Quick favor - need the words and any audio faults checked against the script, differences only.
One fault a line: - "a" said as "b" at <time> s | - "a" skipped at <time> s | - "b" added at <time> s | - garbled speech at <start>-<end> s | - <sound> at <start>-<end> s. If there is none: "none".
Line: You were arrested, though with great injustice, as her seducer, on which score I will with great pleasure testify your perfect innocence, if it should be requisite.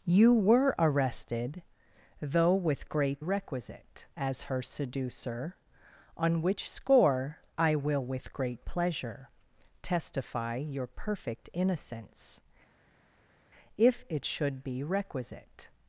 - "injustice" said as "requisite" at 3.2 s